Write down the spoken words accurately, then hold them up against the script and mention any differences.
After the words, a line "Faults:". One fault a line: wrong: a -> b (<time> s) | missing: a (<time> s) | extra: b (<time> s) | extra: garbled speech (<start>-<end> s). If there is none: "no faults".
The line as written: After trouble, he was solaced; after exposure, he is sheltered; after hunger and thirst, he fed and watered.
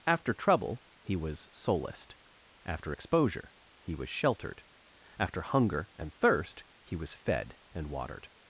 After trouble, he was solaced; after exposure, he was sheltered; after hunger and thirst, he was fed and watered.
Faults:
wrong: is -> was (3.9 s)
extra: was (6.9 s)